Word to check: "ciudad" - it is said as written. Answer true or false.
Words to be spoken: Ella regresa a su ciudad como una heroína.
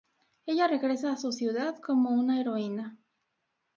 true